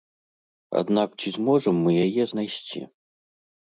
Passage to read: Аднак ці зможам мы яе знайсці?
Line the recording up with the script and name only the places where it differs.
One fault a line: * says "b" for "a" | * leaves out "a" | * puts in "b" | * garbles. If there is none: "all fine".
all fine